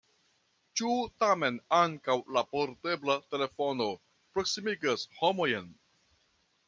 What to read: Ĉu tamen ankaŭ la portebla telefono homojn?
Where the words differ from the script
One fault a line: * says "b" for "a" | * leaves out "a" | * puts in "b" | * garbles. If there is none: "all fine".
* puts in "proksimigas"